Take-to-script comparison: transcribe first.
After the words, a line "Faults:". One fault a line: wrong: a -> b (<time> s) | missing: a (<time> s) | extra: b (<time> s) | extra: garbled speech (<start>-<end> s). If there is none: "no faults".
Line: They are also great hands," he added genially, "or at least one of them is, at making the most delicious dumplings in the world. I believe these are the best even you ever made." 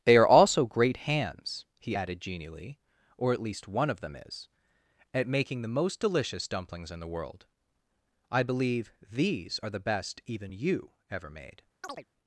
They are also great hands," he added genially, "or at least one of them is, at making the most delicious dumplings in the world. I believe these are the best even you ever made."
Faults:
no faults